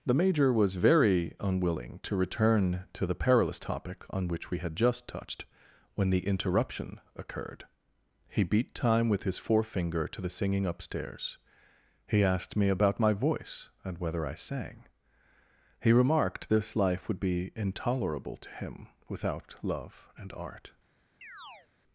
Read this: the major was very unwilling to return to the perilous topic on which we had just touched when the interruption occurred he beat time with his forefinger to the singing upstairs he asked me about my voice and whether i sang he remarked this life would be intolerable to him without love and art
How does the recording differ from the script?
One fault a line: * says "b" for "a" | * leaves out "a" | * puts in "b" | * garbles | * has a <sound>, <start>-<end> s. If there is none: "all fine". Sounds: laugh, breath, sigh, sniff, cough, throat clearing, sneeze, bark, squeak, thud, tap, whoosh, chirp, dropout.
* has a chirp, 21.2-21.7 s